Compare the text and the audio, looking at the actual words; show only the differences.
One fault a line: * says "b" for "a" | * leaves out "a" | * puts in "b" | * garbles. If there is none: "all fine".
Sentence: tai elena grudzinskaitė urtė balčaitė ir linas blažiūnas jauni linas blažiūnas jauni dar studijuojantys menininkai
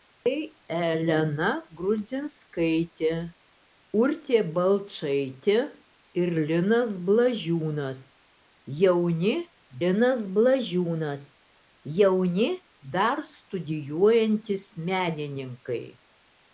all fine